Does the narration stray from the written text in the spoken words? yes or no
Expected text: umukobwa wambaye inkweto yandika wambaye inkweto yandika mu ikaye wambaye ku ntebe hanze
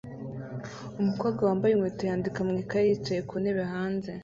yes